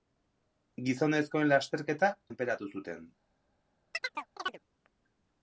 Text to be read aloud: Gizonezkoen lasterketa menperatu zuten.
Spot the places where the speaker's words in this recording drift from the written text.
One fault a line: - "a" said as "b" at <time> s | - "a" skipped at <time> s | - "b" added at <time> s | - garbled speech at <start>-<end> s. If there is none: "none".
none